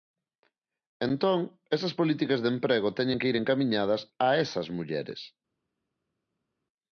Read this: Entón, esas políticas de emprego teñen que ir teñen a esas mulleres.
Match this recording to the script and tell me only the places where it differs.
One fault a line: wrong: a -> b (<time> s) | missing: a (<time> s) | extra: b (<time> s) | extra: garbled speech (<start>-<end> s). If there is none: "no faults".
wrong: teñen -> encamiñadas (3.3 s)